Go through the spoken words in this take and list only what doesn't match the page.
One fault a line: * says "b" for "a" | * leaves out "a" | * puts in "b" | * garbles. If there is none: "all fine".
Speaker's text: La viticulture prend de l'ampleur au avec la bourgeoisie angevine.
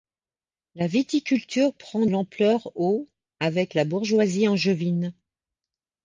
* leaves out "de"